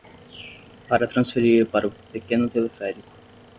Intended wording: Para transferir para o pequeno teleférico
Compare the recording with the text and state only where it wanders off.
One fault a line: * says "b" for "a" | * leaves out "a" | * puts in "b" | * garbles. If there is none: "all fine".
all fine